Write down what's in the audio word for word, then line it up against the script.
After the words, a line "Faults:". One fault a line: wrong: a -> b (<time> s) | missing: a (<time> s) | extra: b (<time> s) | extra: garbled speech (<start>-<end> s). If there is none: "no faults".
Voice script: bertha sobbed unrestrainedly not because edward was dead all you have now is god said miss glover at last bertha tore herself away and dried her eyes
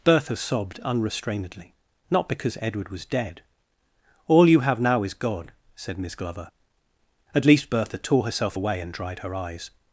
bertha sobbed unrestrainedly not because edward was dead all you have now is god said miss glover at least bertha tore herself away and dried her eyes
Faults:
wrong: last -> least (7.5 s)